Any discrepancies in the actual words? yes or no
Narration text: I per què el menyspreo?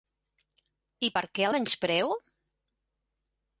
yes